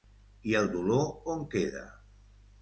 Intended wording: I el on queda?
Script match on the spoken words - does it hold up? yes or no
no